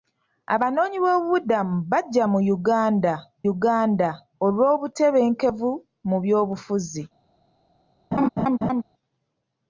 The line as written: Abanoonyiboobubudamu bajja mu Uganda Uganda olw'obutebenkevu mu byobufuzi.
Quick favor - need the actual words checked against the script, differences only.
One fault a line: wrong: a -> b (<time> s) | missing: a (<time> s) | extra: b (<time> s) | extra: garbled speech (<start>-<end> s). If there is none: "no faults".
no faults